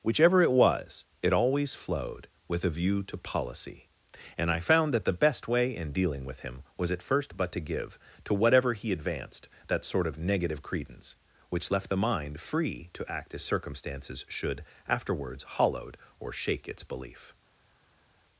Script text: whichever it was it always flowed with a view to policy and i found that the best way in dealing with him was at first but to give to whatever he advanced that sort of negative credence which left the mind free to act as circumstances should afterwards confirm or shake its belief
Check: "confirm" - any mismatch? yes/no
yes